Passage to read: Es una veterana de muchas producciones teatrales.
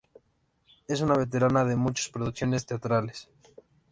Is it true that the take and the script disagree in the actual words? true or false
false